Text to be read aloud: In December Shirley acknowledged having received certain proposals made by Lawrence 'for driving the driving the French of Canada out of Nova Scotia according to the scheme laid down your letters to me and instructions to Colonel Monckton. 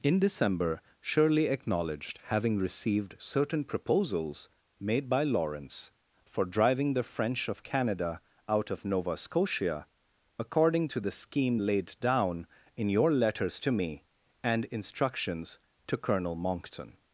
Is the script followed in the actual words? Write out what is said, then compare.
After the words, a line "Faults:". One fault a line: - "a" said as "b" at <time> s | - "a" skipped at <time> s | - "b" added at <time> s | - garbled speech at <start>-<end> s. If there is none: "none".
In December Shirley acknowledged having received certain proposals made by Lawrence 'for driving the French of Canada out of Nova Scotia according to the scheme laid down in your letters to me and instructions to Colonel Monckton.
Faults:
- "driving the" skipped at 7.0 s
- "in" added at 12.7 s